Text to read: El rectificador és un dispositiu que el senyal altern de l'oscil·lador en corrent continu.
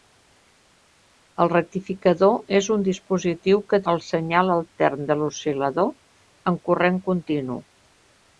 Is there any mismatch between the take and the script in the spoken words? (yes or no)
no